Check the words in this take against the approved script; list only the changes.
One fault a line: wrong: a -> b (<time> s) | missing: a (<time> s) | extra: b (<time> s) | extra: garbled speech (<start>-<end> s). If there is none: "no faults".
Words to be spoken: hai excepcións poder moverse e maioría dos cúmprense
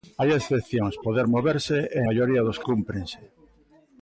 no faults